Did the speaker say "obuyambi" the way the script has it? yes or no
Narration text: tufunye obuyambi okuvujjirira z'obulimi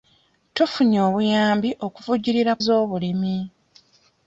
yes